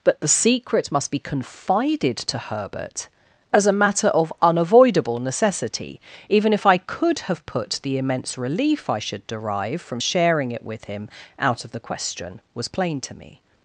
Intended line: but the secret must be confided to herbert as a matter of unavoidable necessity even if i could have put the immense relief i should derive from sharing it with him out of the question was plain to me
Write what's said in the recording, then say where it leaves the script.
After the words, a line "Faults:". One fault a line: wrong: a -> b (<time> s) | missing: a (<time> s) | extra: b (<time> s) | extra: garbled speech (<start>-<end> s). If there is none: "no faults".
but the secret must be confided to herbert as a matter of unavoidable necessity even if i could have put the immense relief i should derive from sharing it with him out of the question was plain to me
Faults:
no faults